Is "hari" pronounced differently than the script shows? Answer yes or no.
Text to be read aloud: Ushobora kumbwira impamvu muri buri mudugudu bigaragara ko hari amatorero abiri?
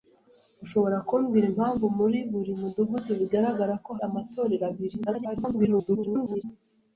yes